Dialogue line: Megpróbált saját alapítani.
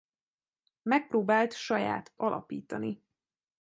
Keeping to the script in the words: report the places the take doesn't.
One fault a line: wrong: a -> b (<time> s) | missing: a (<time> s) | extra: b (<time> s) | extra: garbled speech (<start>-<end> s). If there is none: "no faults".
no faults